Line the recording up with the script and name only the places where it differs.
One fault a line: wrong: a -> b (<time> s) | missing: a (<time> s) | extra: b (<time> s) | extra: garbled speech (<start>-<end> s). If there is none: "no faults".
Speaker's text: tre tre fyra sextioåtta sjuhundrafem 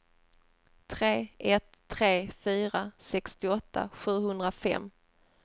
extra: ett (1.4 s)